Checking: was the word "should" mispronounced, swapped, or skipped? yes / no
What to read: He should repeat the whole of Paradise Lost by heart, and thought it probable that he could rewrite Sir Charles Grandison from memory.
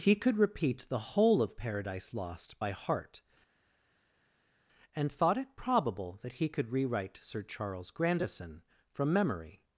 yes